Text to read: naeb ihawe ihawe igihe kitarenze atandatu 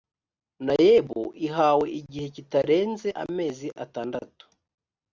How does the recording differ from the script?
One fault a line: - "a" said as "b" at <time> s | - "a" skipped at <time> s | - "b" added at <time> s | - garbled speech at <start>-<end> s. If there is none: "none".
- "ihawe" skipped at 1.9 s
- "amezi" added at 3.2 s